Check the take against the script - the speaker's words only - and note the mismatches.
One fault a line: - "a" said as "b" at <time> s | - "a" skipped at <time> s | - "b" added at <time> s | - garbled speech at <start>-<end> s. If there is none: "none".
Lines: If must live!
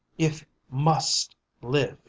none